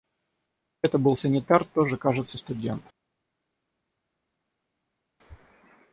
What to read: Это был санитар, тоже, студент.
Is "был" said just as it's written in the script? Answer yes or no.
yes